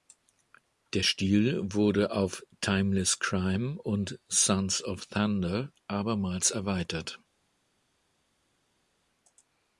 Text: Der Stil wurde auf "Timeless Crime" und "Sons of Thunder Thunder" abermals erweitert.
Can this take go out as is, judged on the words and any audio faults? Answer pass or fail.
fail